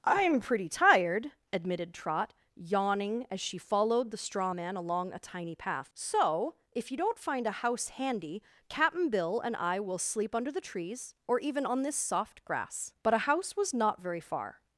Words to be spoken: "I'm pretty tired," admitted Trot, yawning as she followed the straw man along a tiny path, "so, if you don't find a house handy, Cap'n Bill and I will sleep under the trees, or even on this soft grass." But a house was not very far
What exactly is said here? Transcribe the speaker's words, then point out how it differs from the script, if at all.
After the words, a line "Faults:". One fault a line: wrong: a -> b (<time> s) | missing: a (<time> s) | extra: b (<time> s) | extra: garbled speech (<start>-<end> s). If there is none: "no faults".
"I'm pretty tired," admitted Trot, yawning as she followed the straw man along a tiny path, "so, if you don't find a house handy, Cap'n Bill and I will sleep under the trees, or even on this soft grass." But a house was not very far
Faults:
no faults